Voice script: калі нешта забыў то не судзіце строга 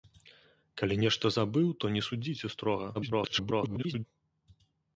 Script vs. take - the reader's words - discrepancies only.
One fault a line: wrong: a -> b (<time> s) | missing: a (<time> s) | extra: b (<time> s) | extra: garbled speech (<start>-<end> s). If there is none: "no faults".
extra: garbled speech (2.9-4.0 s)